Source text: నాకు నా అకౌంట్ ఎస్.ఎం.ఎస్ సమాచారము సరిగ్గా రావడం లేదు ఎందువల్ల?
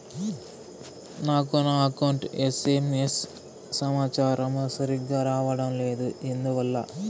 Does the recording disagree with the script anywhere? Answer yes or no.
no